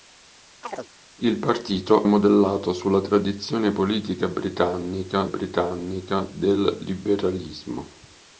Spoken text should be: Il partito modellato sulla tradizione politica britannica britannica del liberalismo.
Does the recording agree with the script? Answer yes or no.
yes